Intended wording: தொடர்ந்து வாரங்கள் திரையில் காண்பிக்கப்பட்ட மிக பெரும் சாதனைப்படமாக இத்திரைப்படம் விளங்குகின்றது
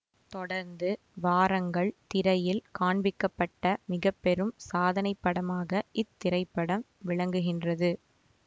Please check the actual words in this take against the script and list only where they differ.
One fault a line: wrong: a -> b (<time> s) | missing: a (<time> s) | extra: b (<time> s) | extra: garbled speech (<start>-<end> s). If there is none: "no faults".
no faults